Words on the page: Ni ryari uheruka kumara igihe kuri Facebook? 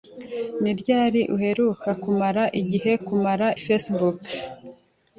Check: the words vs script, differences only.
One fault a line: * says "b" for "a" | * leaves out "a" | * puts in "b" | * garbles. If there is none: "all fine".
* says "kumara" for "kuri"